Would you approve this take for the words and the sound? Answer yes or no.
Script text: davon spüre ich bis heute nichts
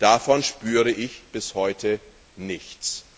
yes